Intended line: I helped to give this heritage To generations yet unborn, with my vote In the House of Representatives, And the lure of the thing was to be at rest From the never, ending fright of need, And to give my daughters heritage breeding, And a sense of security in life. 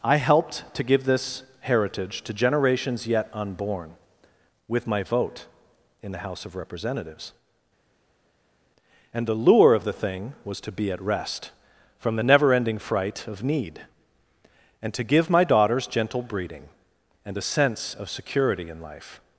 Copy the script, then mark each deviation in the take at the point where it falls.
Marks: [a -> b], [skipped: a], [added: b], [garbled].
I helped to give this heritage To generations yet unborn, with my vote In the House of Representatives, And the lure of the thing was to be at rest From the never, ending fright of need, And to give my daughters [heritage -> gentle] breeding, And a sense of security in life.